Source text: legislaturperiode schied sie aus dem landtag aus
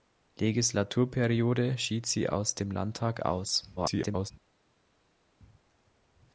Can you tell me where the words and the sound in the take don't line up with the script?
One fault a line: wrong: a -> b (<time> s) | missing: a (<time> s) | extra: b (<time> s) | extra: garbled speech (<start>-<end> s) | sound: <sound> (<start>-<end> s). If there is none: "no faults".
extra: garbled speech (3.8-4.3 s)